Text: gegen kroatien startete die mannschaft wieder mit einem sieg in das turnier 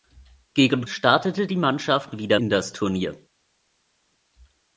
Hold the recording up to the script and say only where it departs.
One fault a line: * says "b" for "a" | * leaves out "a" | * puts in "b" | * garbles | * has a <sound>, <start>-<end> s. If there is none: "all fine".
* leaves out "kroatien"
* leaves out "mit einem sieg"